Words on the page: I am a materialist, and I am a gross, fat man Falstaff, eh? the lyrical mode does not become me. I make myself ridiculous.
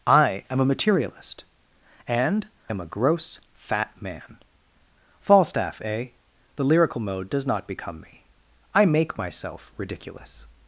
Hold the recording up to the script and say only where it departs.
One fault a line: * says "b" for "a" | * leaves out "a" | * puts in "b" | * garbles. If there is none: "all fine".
* leaves out "I"